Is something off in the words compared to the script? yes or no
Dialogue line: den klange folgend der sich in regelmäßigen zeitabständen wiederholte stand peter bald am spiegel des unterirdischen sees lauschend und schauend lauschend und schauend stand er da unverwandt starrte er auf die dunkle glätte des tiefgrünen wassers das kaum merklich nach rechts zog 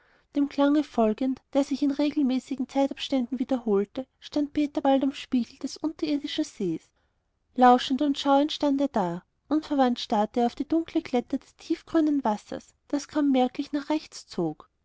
yes